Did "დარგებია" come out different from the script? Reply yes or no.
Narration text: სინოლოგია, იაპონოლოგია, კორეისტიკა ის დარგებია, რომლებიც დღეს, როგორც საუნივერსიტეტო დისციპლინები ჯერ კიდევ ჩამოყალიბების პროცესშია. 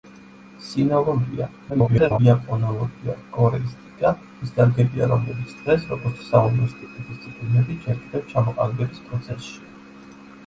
no